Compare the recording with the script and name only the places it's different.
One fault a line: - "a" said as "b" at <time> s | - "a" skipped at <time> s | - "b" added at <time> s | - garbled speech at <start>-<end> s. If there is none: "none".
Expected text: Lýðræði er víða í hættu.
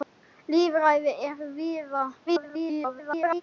- garbled speech at 2.3-3.4 s